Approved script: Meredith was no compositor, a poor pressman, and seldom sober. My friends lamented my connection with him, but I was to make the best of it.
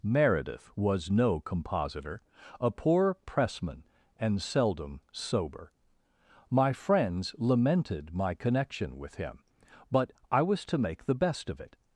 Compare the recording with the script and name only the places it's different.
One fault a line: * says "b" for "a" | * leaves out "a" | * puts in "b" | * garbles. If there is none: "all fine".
all fine